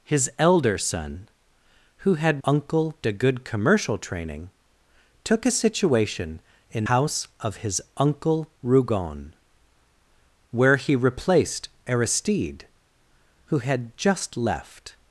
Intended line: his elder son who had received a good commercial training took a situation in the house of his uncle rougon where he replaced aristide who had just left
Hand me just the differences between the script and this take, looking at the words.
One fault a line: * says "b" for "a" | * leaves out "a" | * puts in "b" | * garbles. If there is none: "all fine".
* says "uncle" for "received"
* leaves out "the"